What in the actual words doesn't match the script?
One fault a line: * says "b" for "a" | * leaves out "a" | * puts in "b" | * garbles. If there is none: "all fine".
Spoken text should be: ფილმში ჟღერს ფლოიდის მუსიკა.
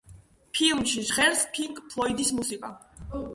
* puts in "პინკ"